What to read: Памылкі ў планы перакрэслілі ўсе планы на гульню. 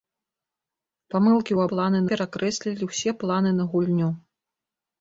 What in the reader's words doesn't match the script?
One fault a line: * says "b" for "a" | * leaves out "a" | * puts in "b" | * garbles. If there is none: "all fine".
all fine